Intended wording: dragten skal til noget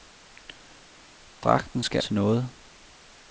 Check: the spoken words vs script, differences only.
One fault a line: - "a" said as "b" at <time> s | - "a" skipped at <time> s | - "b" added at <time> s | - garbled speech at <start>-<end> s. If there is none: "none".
none